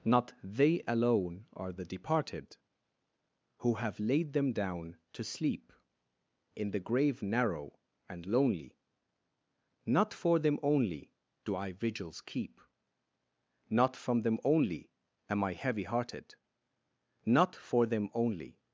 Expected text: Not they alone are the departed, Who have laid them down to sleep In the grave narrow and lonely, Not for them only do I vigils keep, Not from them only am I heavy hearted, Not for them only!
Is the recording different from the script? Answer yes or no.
no